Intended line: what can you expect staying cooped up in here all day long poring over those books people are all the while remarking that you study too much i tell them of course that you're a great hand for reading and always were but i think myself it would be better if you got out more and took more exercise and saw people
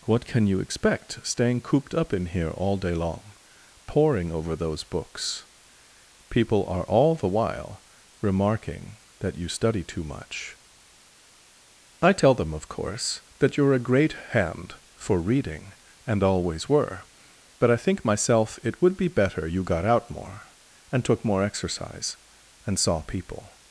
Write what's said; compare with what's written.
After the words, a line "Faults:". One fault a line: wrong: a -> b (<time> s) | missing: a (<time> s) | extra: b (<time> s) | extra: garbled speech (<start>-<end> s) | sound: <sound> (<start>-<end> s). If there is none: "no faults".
what can you expect staying cooped up in here all day long poring over those books people are all the while remarking that you study too much i tell them of course that you're a great hand for reading and always were but i think myself it would be better you got out more and took more exercise and saw people
Faults:
missing: if (19.4 s)